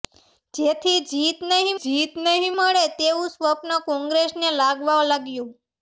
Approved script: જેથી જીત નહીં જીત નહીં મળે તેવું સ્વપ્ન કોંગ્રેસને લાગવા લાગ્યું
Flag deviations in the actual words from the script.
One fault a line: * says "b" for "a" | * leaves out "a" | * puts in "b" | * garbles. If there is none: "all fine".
all fine